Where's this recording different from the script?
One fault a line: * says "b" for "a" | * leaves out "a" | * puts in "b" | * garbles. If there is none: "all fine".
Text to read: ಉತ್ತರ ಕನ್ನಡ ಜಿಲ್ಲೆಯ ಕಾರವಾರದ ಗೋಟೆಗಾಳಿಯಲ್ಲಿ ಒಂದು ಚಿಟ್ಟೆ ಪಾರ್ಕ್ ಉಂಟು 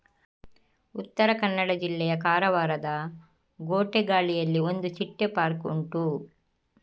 all fine